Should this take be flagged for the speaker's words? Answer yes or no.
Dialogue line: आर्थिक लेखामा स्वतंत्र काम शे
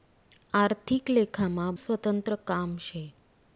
no